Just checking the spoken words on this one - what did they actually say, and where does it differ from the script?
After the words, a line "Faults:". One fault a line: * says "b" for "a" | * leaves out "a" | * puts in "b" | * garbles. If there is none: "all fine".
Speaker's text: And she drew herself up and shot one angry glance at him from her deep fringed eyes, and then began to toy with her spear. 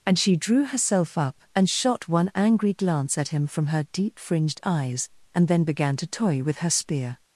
And she drew herself up and shot one angry glance at him from her deep fringed eyes, and then began to toy with her spear.
Faults:
all fine